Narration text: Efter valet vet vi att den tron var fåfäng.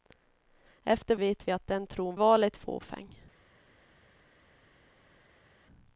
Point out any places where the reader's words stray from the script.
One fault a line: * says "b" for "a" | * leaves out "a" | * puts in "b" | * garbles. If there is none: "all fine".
* leaves out "valet"
* says "valet" for "var"